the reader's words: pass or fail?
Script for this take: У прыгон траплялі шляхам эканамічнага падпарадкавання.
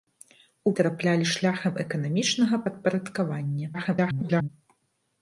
fail